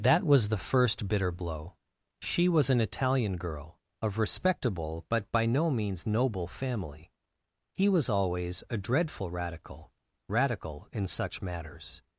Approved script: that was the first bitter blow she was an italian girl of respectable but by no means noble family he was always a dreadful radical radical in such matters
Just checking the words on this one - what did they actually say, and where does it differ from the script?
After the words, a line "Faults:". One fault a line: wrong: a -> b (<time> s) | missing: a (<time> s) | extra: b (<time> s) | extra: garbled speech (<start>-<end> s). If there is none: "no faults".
that was the first bitter blow she was an italian girl of respectable but by no means noble family he was always a dreadful radical radical in such matters
Faults:
no faults